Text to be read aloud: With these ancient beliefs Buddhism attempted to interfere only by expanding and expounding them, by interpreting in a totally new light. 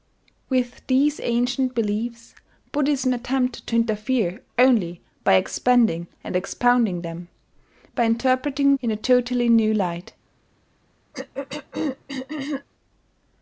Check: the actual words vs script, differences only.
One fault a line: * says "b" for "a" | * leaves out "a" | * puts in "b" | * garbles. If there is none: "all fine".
all fine